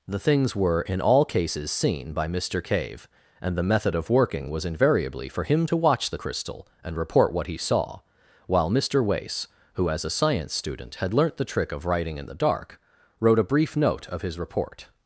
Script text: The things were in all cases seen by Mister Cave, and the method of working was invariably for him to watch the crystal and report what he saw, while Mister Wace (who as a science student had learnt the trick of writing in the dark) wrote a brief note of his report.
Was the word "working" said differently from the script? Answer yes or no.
no